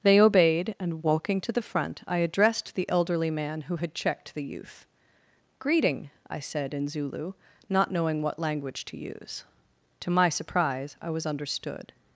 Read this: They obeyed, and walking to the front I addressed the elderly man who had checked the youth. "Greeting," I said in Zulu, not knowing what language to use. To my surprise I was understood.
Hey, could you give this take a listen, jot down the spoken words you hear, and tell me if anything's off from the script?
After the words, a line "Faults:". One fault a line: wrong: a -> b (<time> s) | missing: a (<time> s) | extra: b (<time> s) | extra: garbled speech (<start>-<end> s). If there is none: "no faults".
They obeyed, and walking to the front I addressed the elderly man who had checked the youth. "Greeting," I said in Zulu, not knowing what language to use. To my surprise I was understood.
Faults:
no faults